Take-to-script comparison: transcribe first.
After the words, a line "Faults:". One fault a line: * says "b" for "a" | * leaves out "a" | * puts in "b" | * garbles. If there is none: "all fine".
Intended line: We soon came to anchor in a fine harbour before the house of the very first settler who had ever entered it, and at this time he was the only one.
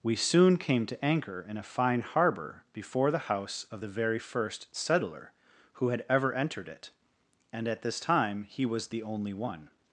We soon came to anchor in a fine harbour before the house of the very first settler who had ever entered it, and at this time he was the only one.
Faults:
all fine